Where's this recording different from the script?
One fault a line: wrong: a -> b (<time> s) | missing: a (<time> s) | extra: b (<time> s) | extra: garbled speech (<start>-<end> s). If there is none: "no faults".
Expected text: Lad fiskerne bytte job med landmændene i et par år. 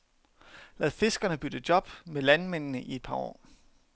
no faults